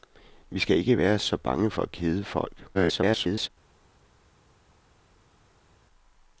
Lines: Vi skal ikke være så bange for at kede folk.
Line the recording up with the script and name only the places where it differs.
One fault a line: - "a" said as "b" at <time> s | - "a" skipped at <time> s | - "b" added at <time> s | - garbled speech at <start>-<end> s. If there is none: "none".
- garbled speech at 2.7-3.5 s